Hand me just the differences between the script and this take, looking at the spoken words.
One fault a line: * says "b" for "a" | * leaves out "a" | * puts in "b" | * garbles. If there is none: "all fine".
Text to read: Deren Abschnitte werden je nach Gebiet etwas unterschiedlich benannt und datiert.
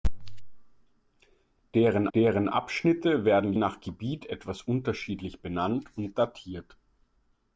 * puts in "deren"
* leaves out "je"